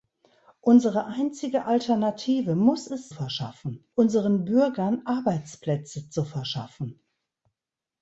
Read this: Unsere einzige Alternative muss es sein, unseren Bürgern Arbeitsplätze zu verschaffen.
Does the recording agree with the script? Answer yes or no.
no